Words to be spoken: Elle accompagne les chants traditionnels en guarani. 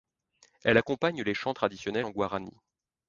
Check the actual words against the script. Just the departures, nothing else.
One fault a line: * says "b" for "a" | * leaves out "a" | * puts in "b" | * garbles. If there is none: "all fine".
all fine